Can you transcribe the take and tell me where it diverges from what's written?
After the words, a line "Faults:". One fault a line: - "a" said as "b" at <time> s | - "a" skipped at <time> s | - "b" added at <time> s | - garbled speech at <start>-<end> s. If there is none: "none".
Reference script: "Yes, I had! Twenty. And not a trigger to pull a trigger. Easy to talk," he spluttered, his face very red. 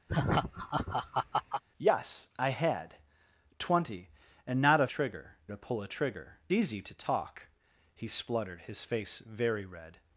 "Yes, I had! Twenty. And not a trigger to pull a trigger. Easy to talk," he spluttered, his face very red.
Faults:
none